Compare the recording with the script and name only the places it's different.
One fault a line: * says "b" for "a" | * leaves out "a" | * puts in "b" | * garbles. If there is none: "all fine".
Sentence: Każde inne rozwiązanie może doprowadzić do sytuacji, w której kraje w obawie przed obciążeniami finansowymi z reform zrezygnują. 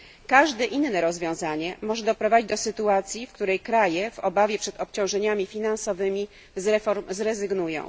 all fine